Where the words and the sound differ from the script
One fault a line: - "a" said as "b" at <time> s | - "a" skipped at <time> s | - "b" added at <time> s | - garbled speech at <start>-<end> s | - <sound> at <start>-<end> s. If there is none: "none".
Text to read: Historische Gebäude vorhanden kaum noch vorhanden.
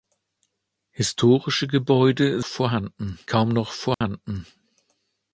- dropout at 3.9-4.0 s